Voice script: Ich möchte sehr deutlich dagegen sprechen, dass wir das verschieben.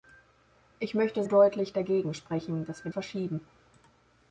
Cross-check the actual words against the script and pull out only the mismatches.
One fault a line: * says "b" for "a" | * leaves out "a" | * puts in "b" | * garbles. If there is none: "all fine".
* leaves out "sehr"
* leaves out "das"